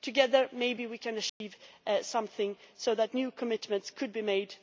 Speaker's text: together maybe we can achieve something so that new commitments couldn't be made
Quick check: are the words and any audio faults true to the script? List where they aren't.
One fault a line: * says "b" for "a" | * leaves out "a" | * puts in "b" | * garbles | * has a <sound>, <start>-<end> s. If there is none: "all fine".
* has a dropout, 1.3-1.4 s
* says "could" for "couldn't"